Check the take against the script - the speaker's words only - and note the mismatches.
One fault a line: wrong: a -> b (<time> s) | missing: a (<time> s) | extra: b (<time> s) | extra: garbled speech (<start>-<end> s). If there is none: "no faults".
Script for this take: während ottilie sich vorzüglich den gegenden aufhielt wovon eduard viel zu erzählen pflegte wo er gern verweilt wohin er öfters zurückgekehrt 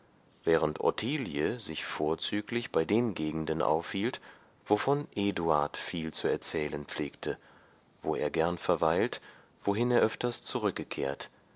extra: bei (2.7 s)